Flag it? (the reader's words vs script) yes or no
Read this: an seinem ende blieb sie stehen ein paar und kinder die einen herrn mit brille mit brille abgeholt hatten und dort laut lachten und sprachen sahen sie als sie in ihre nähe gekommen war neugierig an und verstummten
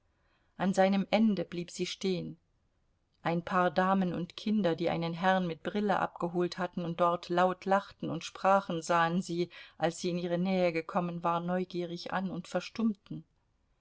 yes